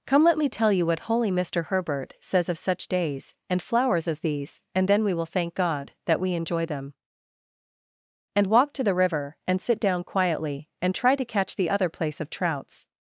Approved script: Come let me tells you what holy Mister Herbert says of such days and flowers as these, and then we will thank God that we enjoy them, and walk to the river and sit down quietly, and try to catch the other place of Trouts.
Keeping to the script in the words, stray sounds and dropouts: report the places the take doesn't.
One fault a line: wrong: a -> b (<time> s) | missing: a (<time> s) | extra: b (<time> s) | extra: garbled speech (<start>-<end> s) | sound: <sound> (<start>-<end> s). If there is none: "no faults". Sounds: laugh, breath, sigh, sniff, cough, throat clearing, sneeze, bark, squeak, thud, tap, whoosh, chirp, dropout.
wrong: tells -> tell (0.5 s)